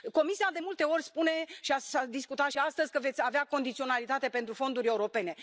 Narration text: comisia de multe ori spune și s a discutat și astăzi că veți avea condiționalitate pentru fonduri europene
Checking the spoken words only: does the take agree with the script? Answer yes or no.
yes